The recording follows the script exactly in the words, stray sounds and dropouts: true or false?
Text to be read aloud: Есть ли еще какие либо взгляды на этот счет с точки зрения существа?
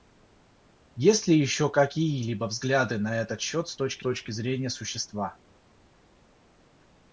false